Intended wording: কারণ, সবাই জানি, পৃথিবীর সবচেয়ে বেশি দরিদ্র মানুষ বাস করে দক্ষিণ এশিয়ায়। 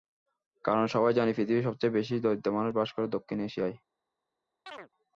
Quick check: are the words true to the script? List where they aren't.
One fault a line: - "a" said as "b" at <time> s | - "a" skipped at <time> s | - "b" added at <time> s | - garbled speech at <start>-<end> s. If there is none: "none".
none